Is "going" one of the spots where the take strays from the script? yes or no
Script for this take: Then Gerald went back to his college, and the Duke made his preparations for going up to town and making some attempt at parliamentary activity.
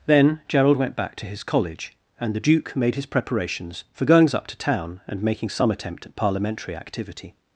yes